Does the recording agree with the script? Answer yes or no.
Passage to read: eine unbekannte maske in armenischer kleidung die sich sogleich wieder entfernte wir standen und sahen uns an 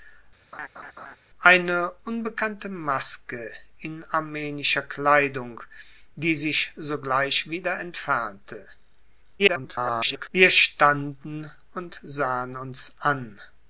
no